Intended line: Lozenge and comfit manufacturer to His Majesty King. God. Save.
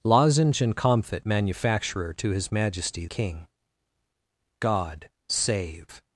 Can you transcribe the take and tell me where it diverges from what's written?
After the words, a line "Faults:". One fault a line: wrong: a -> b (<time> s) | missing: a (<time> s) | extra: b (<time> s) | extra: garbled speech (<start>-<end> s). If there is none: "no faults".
Lozenge and comfit manufacturer to His Majesty King. God. Save.
Faults:
no faults